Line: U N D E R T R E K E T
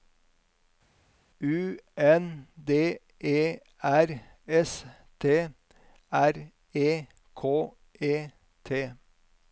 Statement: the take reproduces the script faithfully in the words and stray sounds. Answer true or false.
false